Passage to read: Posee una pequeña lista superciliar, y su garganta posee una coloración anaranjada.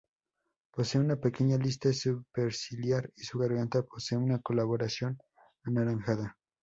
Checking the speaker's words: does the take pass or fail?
pass